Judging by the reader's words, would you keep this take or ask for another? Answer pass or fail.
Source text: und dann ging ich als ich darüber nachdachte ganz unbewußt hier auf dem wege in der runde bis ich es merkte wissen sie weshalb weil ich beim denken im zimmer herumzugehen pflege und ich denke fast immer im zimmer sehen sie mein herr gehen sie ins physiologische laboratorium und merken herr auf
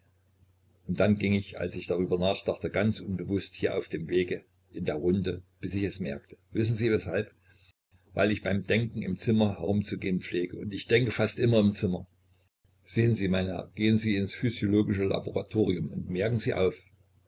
fail